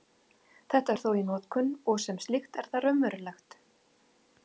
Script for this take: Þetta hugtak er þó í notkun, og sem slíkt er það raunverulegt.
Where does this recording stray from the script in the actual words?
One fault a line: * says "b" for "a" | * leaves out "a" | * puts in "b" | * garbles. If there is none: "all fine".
* leaves out "hugtak"